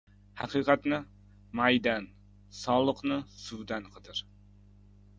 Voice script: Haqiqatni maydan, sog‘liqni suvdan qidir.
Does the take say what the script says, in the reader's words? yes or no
yes